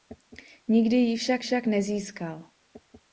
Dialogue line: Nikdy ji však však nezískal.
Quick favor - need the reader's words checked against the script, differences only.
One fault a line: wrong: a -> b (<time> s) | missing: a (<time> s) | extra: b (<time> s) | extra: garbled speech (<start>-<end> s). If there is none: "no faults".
no faults